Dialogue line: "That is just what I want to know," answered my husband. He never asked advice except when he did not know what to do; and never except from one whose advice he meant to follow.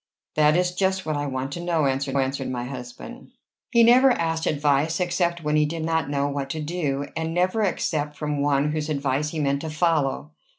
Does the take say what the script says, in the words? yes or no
no